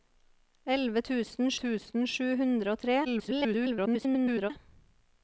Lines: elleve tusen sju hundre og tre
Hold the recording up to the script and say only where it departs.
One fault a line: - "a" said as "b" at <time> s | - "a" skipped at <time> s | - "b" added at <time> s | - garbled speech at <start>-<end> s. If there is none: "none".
- "tusen" added at 1.6 s
- garbled speech at 3.0-4.5 s